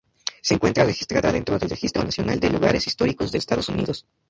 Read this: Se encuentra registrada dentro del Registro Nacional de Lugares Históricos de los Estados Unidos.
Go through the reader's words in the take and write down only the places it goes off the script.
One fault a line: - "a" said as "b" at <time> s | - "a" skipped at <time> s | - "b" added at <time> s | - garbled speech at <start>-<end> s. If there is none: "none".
- "los" skipped at 3.4 s